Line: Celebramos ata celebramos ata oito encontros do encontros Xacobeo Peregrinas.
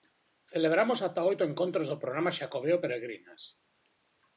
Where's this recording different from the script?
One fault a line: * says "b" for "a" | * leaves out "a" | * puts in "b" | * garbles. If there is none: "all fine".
* leaves out "celebramos ata"
* says "programa" for "encontros"